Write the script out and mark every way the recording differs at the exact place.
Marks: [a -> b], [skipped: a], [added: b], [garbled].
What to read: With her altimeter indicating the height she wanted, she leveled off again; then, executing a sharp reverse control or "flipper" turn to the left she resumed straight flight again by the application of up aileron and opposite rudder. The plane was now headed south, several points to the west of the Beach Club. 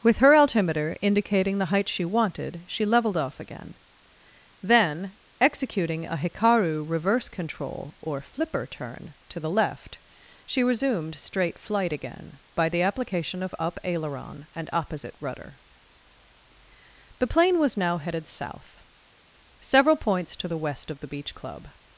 With her altimeter indicating the height she wanted, she leveled off again; then, executing a [sharp -> hikaru] reverse control or "flipper" turn to the left she resumed straight flight again by the application of up aileron and opposite rudder. The plane was now headed south, several points to the west of the Beach Club.